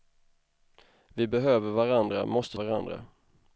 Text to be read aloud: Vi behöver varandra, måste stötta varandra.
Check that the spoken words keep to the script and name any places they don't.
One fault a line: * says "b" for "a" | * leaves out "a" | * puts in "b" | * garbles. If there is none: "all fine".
* leaves out "stötta"